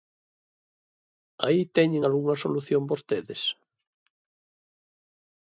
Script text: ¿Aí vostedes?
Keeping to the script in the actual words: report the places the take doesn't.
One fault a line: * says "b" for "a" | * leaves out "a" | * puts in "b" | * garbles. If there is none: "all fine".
* puts in "teñen algunha solución"